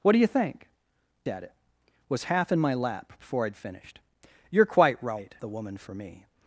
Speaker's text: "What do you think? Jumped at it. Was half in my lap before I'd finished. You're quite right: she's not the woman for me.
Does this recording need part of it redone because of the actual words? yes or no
yes